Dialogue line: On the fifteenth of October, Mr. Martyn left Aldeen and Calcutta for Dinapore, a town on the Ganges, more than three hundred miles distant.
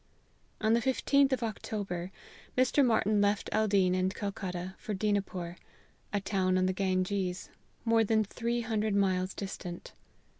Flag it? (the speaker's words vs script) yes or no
no